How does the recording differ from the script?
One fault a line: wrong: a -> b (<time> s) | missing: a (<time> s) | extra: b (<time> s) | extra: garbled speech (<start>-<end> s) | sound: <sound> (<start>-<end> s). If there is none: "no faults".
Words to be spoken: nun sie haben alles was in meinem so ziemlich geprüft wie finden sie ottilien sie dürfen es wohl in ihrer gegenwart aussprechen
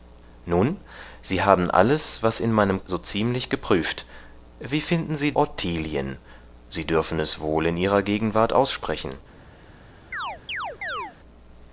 sound: chirp (10.1-11.1 s)